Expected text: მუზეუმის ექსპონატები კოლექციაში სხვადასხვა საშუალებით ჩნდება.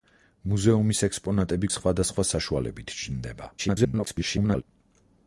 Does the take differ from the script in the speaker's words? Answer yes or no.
yes